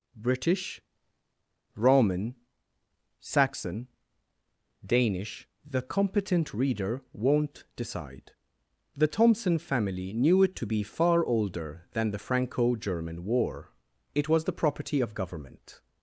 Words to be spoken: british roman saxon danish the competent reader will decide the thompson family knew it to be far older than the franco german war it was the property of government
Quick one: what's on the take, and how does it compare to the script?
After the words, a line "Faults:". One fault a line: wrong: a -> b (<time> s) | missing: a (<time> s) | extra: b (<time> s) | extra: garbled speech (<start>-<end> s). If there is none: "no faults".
british roman saxon danish the competent reader won't decide the thompson family knew it to be far older than the franco german war it was the property of government
Faults:
wrong: will -> won't (7.1 s)